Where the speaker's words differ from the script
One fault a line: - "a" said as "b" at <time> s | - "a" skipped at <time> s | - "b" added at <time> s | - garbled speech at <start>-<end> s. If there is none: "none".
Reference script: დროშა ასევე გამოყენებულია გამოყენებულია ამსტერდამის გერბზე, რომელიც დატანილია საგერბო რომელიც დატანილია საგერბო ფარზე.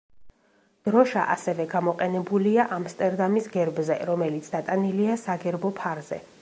- "გამოყენებულია" skipped at 2.6 s
- "რომელიც დატანილია საგერბო" skipped at 5.8 s